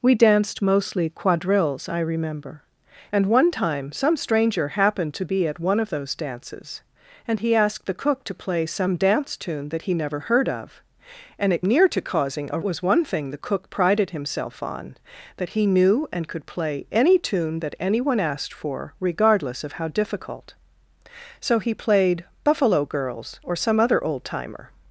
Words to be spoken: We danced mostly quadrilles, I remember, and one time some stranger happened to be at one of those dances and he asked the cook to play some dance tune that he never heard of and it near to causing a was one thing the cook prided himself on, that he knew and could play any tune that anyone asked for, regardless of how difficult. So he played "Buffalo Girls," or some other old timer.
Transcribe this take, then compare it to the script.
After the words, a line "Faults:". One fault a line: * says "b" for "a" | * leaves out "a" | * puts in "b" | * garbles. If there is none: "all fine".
We danced mostly quadrilles, I remember, and one time some stranger happened to be at one of those dances and he asked the cook to play some dance tune that he never heard of and it near to causing a was one thing the cook prided himself on, that he knew and could play any tune that anyone asked for, regardless of how difficult. So he played "Buffalo Girls," or some other old timer.
Faults:
all fine